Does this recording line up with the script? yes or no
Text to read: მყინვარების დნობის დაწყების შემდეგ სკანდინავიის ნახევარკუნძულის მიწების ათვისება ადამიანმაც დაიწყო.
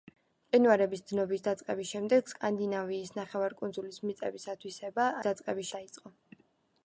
no